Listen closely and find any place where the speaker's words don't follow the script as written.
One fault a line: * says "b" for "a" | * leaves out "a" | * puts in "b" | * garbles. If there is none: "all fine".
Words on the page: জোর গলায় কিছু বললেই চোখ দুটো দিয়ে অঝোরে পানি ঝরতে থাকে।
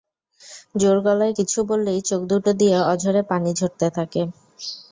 all fine